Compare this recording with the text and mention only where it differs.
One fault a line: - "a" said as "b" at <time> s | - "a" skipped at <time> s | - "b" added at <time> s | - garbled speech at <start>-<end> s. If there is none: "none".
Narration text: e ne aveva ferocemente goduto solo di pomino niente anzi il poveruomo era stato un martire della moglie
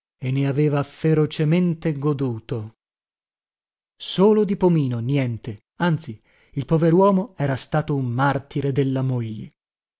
none